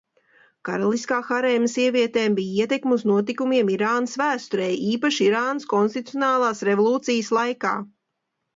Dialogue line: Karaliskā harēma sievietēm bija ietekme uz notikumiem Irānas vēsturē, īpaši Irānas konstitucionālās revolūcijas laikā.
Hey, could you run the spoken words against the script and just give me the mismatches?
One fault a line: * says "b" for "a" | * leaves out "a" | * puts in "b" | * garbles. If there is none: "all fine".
all fine